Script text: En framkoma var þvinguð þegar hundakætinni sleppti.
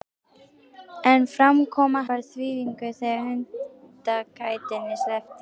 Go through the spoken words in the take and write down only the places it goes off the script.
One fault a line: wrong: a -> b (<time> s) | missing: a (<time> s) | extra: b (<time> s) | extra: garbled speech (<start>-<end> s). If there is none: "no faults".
no faults